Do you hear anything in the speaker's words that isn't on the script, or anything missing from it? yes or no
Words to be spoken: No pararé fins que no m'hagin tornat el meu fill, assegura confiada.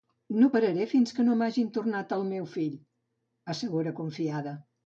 no